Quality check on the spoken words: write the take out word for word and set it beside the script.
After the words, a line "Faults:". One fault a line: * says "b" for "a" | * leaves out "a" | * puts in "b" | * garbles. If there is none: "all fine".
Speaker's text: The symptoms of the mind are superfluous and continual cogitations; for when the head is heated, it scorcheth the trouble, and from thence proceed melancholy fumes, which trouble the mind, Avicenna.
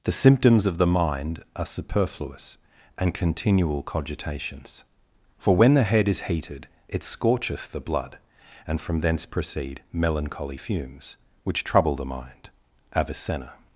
The symptoms of the mind are superfluous and continual cogitations; for when the head is heated, it scorcheth the blood, and from thence proceed melancholy fumes, which trouble the mind, Avicenna.
Faults:
* says "blood" for "trouble"